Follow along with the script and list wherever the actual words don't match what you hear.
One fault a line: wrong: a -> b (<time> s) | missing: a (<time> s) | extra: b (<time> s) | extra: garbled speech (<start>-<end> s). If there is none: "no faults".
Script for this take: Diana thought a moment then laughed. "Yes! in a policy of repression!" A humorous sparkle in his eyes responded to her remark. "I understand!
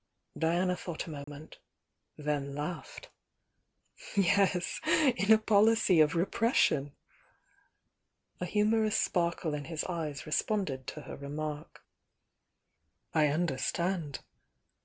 no faults